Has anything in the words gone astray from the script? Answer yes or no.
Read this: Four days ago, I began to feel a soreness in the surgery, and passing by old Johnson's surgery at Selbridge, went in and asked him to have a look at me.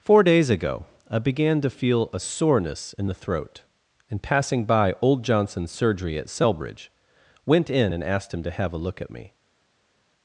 yes